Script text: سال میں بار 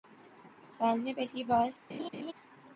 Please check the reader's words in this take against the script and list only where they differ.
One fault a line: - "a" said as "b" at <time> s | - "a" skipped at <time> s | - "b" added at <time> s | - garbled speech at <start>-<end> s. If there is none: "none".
- "پہلی" added at 1.1 s